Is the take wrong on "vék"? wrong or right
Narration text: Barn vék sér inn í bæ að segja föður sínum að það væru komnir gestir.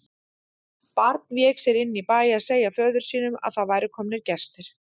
right